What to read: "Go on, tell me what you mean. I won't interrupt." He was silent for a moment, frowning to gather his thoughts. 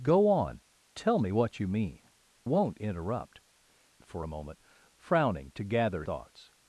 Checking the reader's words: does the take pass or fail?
fail